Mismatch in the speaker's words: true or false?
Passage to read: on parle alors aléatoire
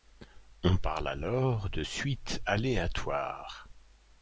true